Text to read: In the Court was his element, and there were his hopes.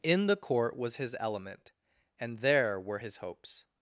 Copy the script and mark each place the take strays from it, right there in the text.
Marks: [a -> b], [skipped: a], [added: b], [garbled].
In the Court was his element, and there were his hopes.